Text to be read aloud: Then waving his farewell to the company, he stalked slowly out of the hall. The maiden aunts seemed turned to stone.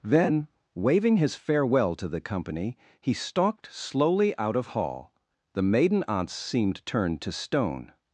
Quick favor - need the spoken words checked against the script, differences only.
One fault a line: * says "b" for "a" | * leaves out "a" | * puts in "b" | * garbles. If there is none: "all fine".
* leaves out "the"